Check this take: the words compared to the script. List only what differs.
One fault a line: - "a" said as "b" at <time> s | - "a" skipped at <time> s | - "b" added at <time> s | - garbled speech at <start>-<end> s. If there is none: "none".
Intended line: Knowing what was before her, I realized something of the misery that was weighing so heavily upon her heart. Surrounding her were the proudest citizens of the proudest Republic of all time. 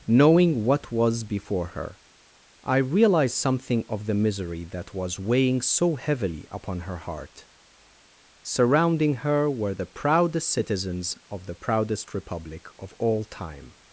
none